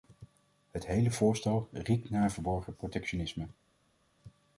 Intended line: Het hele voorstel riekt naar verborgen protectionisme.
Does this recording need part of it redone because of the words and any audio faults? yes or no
no